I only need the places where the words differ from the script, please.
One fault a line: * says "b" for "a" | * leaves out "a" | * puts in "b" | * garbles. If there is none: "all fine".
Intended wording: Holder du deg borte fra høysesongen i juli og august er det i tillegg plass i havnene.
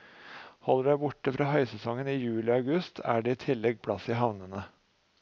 all fine